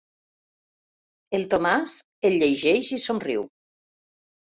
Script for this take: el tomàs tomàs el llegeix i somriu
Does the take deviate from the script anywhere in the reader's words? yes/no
yes